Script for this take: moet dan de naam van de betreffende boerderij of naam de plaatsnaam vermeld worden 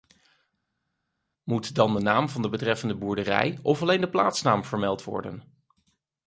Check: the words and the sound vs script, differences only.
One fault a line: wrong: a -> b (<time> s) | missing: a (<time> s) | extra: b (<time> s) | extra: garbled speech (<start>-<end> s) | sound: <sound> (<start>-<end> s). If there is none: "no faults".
wrong: naam -> alleen (3.8 s)